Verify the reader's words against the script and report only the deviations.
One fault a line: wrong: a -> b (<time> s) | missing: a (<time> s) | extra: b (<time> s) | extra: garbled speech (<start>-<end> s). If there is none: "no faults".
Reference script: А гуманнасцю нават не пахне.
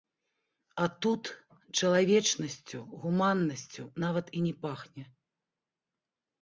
extra: тут чалавечнасцю (1.1 s)
extra: і (4.4 s)